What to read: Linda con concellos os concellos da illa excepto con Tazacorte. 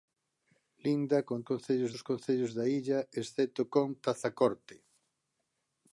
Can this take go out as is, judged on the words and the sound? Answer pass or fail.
pass